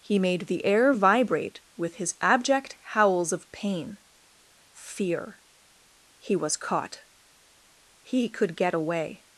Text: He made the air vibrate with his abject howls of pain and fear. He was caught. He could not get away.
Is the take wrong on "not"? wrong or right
wrong